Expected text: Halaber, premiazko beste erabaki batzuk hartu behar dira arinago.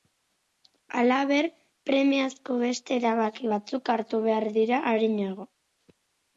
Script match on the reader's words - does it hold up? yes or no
yes